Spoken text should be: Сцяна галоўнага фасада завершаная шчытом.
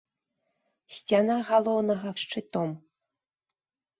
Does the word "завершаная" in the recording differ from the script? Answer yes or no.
yes